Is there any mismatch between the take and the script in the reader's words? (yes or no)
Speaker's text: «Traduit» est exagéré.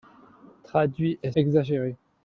no